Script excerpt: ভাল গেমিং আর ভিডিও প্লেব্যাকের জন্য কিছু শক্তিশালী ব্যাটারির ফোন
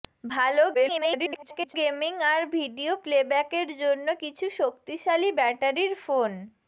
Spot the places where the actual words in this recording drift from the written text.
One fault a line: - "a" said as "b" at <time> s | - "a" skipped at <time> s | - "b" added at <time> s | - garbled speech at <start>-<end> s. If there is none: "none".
- garbled speech at 0.7-1.7 s